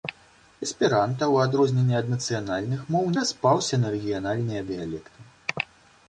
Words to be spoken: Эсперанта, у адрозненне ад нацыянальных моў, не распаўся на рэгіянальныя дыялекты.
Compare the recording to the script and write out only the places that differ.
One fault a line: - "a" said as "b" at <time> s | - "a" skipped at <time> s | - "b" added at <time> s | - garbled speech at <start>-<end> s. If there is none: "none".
- "не" skipped at 3.0 s